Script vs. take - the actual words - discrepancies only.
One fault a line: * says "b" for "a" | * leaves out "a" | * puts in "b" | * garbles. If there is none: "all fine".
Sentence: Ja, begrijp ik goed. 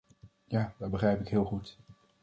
* puts in "dat"
* puts in "heel"